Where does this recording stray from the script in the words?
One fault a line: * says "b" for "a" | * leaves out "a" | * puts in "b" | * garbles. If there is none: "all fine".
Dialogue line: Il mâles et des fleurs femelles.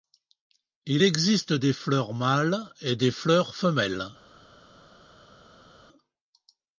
* puts in "existe des fleurs"